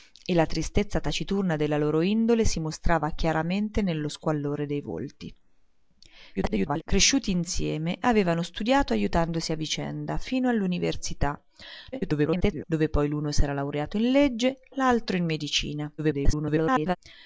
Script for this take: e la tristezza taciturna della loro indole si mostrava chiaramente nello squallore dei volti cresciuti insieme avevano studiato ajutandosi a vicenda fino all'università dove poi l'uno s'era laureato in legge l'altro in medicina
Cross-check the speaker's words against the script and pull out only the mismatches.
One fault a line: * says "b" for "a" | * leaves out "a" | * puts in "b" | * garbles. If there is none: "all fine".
* garbles
* garbles
* garbles